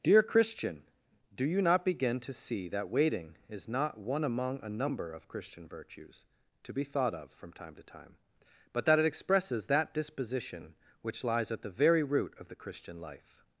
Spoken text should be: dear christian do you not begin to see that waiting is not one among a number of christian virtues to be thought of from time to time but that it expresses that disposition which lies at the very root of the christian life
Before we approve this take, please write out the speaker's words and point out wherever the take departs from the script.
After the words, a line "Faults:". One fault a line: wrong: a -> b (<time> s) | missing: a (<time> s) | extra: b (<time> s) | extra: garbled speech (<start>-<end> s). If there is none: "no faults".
dear christian do you not begin to see that waiting is not one among a number of christian virtues to be thought of from time to time but that it expresses that disposition which lies at the very root of the christian life
Faults:
no faults